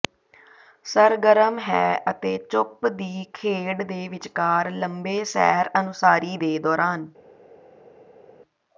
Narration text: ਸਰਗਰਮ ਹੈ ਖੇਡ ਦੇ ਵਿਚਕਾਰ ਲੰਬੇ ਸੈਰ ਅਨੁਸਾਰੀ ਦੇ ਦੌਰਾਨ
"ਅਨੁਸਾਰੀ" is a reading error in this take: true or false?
false